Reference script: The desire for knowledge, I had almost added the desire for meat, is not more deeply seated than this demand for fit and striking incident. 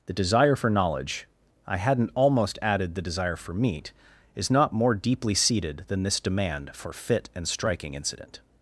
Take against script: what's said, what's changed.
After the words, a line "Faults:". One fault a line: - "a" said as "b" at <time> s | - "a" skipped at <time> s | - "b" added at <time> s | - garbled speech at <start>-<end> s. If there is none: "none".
The desire for knowledge, I hadn't almost added the desire for meat, is not more deeply seated than this demand for fit and striking incident.
Faults:
- "had" said as "hadn't" at 1.8 s